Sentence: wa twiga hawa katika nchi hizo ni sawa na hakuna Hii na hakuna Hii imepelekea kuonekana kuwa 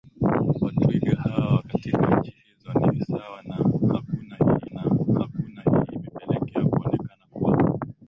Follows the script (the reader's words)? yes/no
yes